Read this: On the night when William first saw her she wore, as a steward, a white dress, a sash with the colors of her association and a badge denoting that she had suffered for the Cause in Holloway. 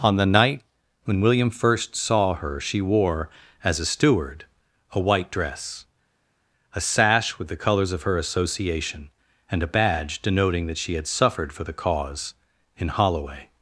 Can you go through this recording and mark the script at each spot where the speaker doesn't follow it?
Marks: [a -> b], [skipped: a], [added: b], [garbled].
On the night when William first saw her she wore, as a steward, a white dress, a sash with the colors of her association and a badge denoting that she had suffered for the Cause in Holloway.